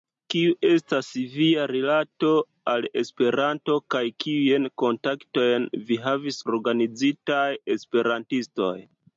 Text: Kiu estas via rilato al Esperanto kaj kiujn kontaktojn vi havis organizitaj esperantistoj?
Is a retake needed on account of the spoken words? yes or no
no